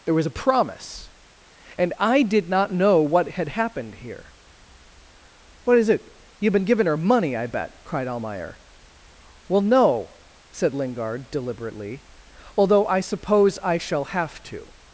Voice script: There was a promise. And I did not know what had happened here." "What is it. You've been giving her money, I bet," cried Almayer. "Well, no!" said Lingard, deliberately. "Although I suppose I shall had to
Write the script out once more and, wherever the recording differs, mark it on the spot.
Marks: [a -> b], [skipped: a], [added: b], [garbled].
There was a promise. And I did not know what had happened here." "What is it. You've been giving her money, I bet," cried Almayer. "Well, no!" said Lingard, deliberately. "Although I suppose I shall [had -> have] to